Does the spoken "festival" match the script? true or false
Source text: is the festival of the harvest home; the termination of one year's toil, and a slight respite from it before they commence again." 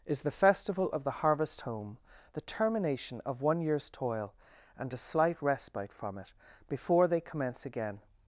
true